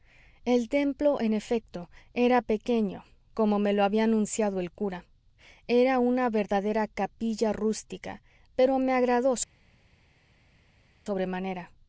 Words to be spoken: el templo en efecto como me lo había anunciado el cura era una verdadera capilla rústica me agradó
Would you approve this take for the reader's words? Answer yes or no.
no